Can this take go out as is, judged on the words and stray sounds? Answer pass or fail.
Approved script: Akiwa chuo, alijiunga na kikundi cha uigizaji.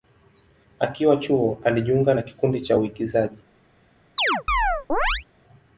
fail